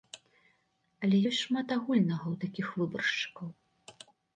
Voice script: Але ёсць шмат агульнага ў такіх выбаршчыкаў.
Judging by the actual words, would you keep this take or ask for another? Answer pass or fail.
pass